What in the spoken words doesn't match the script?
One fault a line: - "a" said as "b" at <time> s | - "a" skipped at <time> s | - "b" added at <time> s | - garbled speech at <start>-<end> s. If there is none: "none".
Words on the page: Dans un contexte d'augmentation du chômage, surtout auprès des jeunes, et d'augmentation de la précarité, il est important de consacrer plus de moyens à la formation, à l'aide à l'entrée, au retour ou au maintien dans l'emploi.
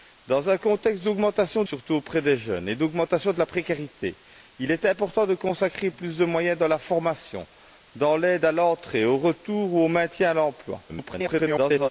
- "du chômage" skipped at 1.6 s
- garbled speech at 10.9-11.9 s